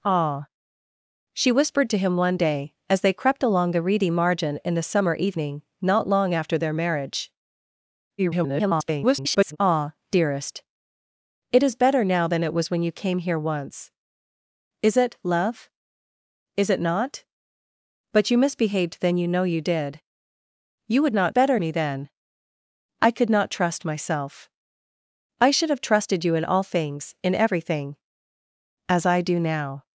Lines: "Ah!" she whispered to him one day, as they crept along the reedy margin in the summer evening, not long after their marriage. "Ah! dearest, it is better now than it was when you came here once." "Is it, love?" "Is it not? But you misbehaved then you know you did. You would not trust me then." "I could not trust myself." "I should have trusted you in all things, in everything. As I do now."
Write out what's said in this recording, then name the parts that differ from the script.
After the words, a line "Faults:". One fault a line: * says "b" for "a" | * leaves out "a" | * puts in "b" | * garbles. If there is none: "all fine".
"Ah!" she whispered to him one day, as they crept along the reedy margin in the summer evening, not long after their marriage. [garbled] "Ah! dearest, it is better now than it was when you came here once." "Is it, love?" "Is it not? But you misbehaved then you know you did. You would not better me then." "I could not trust myself." "I should have trusted you in all things, in everything. As I do now."
Faults:
* garbles
* says "better" for "trust"